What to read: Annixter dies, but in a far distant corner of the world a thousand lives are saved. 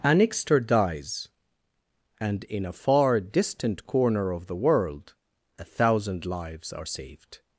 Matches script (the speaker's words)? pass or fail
fail